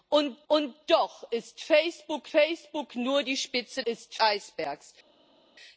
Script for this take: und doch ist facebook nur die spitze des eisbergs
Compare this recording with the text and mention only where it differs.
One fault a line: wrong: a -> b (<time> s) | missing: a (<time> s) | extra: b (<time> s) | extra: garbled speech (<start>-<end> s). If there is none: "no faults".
extra: und (0.5 s)
extra: facebook (2.3 s)
wrong: des -> ist (3.9 s)